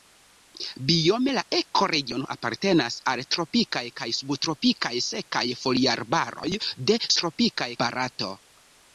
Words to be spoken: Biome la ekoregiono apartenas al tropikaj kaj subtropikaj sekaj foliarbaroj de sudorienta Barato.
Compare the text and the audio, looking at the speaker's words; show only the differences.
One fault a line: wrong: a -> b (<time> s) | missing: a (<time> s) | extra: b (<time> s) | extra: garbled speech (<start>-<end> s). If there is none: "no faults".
wrong: sudorienta -> tropikaj (7.2 s)